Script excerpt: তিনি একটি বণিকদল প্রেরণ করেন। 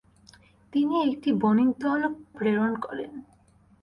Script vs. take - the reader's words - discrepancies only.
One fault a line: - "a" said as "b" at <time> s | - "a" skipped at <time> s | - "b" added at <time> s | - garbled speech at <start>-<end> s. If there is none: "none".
none